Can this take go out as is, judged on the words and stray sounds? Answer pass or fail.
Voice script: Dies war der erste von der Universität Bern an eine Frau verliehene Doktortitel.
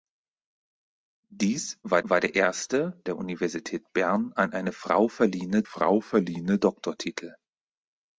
fail